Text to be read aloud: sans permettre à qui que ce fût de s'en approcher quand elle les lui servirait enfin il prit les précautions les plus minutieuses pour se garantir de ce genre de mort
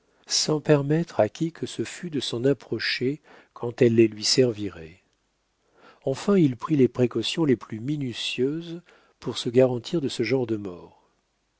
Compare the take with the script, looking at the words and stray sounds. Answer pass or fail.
pass